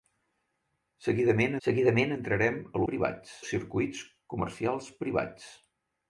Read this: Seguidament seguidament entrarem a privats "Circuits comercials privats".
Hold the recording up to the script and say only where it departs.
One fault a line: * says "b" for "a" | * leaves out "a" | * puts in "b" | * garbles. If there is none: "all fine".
all fine